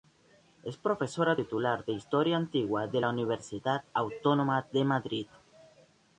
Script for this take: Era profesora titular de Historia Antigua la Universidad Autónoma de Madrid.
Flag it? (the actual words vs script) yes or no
yes